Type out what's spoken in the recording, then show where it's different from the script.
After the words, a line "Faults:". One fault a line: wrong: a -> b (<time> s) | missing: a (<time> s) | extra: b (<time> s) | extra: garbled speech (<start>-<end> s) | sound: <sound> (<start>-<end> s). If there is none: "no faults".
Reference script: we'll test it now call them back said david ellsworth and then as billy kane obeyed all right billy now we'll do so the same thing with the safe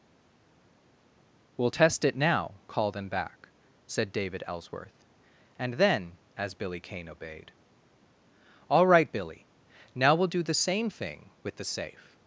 we'll test it now call them back said david ellsworth and then as billy kane obeyed all right billy now we'll do the same thing with the safe
Faults:
missing: so (10.4 s)